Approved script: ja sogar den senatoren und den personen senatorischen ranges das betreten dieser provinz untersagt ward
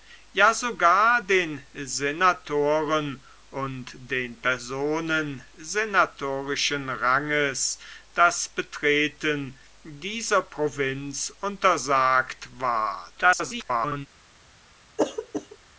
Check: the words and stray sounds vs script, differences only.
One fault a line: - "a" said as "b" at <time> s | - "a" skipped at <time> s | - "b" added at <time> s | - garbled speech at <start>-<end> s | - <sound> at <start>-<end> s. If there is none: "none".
- garbled speech at 13.1-14.1 s
- throat clearing at 15.0-15.6 s